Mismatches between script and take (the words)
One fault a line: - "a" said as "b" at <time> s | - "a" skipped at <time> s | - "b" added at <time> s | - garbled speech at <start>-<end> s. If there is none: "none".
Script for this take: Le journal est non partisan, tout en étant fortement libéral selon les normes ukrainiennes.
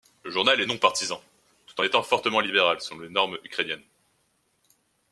none